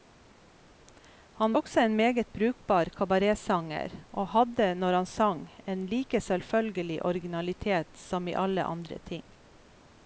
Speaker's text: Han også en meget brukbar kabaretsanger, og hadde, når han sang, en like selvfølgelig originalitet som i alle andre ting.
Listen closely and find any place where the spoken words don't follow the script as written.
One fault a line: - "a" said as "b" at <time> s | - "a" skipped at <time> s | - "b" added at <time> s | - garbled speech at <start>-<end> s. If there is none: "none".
none